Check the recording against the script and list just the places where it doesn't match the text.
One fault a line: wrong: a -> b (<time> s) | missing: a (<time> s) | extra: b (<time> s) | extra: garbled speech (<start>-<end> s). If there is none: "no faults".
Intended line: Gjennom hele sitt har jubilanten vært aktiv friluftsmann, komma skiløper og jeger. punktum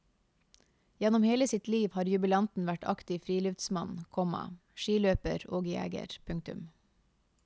extra: liv (1.7 s)